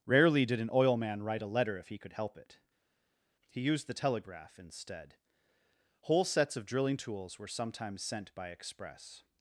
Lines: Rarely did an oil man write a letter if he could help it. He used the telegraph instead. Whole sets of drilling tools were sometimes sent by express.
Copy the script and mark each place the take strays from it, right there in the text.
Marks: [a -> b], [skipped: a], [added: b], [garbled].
Rarely did an oil man write a letter if he could help it. He used the telegraph instead. Whole sets of drilling tools were sometimes sent by express.